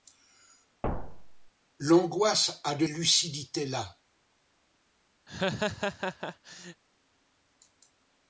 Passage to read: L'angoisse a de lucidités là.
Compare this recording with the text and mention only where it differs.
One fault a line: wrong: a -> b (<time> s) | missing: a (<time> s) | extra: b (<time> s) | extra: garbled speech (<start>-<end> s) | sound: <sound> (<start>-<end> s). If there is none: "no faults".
sound: thud (0.8-1.5 s)
sound: laugh (5.3-6.8 s)